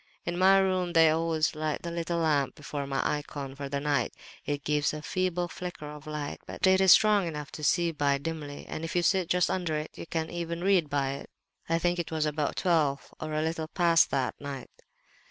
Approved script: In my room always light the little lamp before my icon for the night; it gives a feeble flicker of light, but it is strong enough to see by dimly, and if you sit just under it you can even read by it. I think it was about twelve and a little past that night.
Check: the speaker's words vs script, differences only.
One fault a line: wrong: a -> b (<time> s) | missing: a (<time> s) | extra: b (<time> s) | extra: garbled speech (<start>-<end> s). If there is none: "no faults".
extra: they (0.9 s)
wrong: and -> or (13.2 s)